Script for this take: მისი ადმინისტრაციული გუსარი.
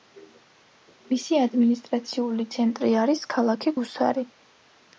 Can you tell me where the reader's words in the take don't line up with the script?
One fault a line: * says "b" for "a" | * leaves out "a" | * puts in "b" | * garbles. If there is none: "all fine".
* puts in "ცენტრი არის ქალაქი"